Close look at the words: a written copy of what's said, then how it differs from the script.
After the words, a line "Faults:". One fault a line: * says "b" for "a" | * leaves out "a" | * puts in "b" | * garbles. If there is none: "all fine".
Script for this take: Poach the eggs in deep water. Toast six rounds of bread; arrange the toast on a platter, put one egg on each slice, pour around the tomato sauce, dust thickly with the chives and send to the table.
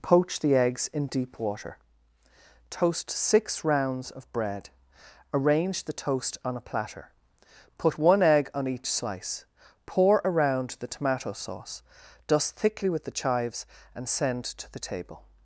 Poach the eggs in deep water. Toast six rounds of bread; arrange the toast on a platter, put one egg on each slice, pour around the tomato sauce, dust thickly with the chives and send to the table.
Faults:
all fine